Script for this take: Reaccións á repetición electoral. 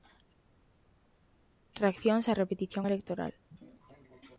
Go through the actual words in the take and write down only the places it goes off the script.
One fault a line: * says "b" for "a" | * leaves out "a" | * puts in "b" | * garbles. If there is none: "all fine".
all fine